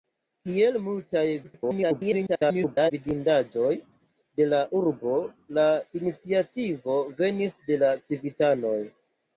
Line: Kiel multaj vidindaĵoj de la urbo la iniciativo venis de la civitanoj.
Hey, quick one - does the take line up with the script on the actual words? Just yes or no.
no